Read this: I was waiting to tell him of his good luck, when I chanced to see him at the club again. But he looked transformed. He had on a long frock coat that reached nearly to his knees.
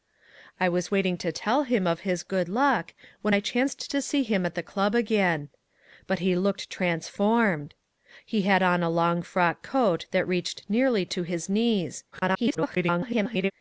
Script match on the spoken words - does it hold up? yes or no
no